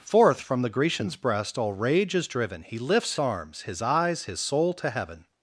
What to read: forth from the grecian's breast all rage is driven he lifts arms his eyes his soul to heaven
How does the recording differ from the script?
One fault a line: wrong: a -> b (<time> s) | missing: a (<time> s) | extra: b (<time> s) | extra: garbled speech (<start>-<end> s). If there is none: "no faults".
no faults